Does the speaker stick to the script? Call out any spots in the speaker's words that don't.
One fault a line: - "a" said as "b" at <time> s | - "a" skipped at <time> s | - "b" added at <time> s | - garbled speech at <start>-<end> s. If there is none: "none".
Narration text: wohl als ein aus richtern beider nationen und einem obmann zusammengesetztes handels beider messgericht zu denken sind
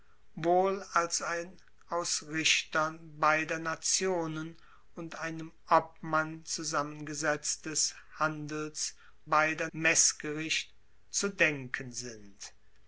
none